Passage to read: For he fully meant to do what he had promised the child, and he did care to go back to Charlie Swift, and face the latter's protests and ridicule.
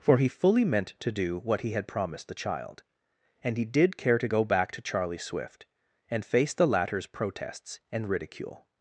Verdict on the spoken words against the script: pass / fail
pass